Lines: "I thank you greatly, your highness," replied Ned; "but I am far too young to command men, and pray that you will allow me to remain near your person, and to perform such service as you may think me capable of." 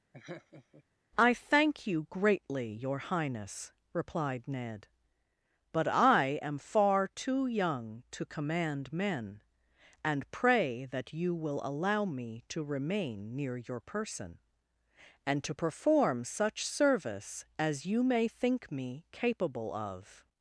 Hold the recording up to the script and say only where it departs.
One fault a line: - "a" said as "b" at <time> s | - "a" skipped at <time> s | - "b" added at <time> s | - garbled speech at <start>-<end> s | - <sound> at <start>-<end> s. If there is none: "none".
- laugh at 0.1-0.8 s